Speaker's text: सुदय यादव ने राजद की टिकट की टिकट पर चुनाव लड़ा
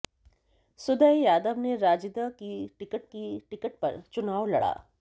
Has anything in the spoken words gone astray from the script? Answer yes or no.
no